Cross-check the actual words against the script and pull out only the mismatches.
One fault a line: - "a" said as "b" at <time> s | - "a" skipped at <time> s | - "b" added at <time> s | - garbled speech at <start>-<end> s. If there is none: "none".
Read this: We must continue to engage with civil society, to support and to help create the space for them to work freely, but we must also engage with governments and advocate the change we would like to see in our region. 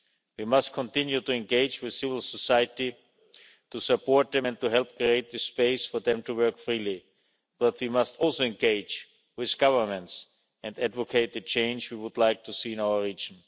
- "them" added at 4.3 s